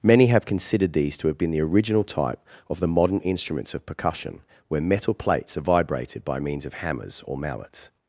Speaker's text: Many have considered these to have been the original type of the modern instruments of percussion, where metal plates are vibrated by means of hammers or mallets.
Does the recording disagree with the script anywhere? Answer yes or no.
no